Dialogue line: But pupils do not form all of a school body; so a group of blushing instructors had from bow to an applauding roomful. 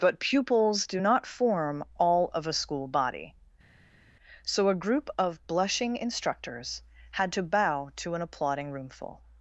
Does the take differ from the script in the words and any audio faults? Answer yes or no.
yes